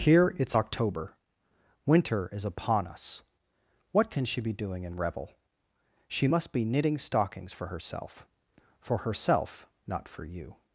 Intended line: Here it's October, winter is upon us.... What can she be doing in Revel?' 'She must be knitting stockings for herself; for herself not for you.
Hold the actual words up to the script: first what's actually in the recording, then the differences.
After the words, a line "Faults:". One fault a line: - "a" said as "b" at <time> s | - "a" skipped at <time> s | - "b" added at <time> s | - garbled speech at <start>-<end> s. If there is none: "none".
Here it's October, winter is upon us.... What can she be doing in Revel?' 'She must be knitting stockings for herself; for herself not for you.
Faults:
none